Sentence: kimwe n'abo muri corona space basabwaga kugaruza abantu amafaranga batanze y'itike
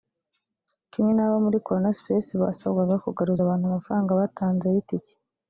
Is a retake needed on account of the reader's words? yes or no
no